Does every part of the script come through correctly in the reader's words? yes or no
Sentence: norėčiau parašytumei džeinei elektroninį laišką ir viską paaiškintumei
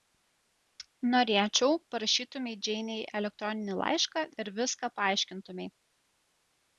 yes